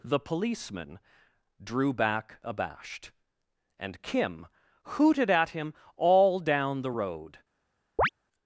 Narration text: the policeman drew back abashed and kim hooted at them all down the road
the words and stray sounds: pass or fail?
fail